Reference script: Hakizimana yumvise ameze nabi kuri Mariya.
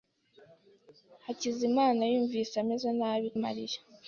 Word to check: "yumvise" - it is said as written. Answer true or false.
true